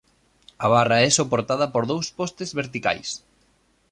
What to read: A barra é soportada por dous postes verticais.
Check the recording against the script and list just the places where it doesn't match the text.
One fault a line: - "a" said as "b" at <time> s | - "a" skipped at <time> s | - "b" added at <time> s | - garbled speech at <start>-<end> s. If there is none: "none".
none